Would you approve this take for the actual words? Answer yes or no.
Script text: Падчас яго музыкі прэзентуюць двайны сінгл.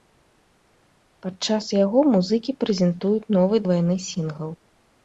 no